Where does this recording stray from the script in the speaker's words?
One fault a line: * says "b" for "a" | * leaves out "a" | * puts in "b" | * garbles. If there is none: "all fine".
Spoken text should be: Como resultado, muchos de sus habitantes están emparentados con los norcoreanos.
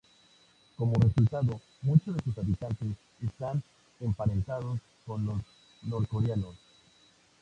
all fine